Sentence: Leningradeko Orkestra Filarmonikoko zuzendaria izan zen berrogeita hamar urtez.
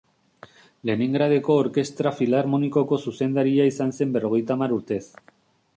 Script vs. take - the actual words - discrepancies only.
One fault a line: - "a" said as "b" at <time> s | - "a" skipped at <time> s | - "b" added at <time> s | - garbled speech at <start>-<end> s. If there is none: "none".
none